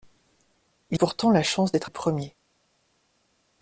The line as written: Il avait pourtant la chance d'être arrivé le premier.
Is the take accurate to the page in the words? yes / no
no